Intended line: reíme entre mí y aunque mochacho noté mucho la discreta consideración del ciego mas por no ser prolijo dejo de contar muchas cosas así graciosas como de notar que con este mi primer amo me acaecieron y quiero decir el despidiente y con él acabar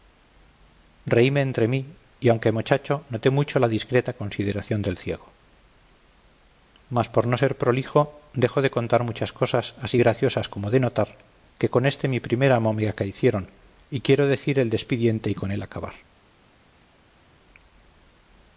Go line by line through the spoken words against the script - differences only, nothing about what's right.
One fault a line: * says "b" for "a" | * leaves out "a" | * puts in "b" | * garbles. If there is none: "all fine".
all fine